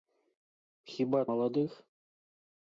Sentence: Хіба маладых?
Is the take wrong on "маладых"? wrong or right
right